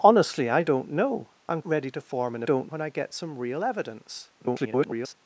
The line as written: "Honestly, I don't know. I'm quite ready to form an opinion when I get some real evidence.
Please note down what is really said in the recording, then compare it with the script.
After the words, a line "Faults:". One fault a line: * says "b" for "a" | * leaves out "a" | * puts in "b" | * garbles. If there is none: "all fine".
"Honestly, I don't know. I'm ready to form an don't when I get some real evidence. [garbled]
Faults:
* leaves out "quite"
* says "don't" for "opinion"
* garbles